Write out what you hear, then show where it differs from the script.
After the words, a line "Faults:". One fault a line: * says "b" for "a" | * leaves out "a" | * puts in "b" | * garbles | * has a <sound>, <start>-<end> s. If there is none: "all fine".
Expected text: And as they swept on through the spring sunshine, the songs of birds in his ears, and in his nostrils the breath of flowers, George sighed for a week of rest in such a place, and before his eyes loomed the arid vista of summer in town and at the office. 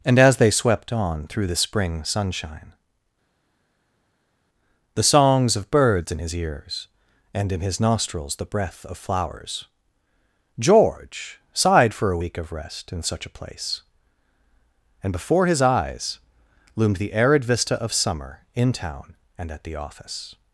And as they swept on through the spring sunshine, the songs of birds in his ears, and in his nostrils the breath of flowers, George sighed for a week of rest in such a place, and before his eyes loomed the arid vista of summer in town and at the office.
Faults:
all fine